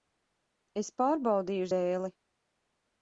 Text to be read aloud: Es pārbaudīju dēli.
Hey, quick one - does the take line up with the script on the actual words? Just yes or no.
yes